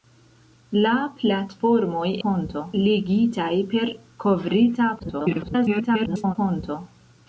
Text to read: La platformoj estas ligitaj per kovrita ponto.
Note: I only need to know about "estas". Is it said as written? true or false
false